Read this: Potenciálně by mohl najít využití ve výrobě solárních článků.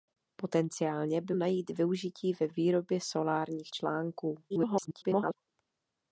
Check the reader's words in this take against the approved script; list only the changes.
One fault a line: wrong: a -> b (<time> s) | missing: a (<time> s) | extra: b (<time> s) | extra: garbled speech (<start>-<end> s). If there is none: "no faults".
missing: mohl (1.4 s)
extra: garbled speech (4.5-5.3 s)